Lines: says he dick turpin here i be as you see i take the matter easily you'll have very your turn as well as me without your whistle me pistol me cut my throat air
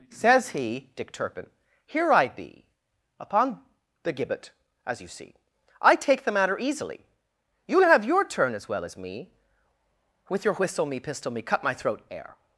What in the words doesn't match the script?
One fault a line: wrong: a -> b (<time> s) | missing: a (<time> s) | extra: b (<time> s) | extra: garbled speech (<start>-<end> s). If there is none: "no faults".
extra: upon the gibbet (3.2 s)
missing: very (8.0 s)
wrong: without -> with (10.3 s)